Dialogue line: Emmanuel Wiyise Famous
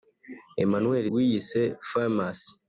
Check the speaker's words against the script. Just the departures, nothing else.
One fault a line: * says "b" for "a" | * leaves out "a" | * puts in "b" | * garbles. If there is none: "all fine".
all fine